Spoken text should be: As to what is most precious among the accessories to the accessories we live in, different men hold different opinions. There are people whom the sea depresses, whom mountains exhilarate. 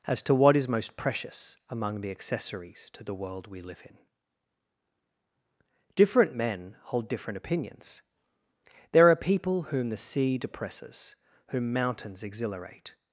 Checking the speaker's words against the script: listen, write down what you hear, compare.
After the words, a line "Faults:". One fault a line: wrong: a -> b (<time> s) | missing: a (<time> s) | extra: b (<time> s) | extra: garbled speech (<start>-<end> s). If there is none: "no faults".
As to what is most precious among the accessories to the world we live in, different men hold different opinions. There are people whom the sea depresses, whom mountains exhilarate.
Faults:
wrong: accessories -> world (3.1 s)